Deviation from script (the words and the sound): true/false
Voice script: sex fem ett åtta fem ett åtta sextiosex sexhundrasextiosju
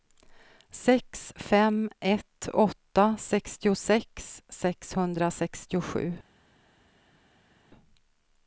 true